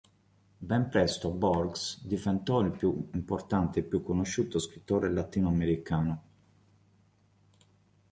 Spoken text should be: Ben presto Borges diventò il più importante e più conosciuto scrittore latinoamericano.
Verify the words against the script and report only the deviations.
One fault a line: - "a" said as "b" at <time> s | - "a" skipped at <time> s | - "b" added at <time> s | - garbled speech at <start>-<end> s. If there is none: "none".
none